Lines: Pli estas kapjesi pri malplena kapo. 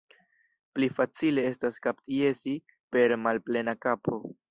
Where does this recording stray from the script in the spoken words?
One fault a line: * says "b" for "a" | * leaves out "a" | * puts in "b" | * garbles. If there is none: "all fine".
* puts in "facile"
* says "per" for "pri"